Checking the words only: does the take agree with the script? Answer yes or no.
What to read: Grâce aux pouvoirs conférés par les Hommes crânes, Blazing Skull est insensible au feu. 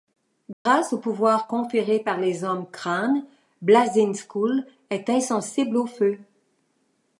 yes